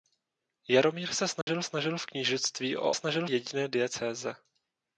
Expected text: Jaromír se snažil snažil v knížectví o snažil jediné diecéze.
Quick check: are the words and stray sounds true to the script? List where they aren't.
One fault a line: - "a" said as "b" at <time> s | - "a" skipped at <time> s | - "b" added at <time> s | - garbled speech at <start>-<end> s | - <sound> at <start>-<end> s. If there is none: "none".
- dropout at 1.4-1.5 s